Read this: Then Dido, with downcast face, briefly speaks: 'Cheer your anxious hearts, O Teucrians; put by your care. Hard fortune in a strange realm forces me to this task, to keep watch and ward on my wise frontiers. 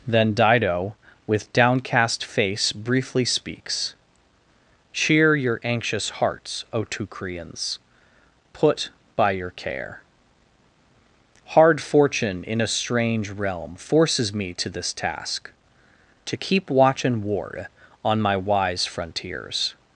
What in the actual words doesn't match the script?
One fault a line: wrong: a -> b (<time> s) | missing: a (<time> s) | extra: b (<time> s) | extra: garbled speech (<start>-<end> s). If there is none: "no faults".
no faults